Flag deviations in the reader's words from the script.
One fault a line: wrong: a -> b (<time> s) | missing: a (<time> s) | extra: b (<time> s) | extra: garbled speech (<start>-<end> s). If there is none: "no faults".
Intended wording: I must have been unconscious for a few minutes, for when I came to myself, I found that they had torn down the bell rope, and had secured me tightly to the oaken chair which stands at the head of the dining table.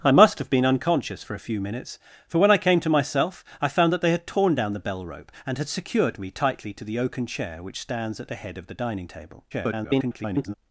extra: garbled speech (9.5-10.5 s)